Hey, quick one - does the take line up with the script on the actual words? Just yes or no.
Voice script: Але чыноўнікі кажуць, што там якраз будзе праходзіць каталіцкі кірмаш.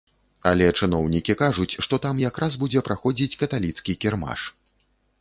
yes